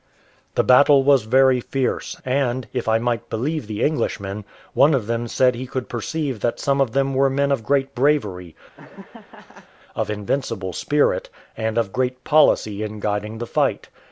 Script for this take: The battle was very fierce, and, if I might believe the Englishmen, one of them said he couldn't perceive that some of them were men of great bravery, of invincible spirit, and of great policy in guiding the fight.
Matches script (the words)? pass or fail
fail